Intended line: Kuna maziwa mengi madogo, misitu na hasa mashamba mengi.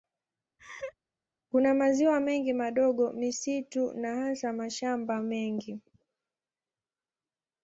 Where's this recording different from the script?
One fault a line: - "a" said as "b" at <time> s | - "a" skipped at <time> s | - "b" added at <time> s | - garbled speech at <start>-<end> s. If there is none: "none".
none